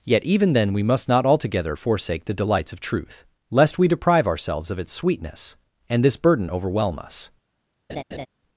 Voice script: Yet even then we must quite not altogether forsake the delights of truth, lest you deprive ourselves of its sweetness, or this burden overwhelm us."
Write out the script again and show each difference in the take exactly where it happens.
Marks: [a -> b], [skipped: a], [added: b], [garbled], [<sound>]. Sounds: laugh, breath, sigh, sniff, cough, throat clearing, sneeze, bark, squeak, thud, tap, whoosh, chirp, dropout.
Yet even then we must [skipped: quite] not altogether forsake the delights of truth, lest [you -> we] deprive ourselves of its sweetness, [or -> and] this burden overwhelm us." [laugh]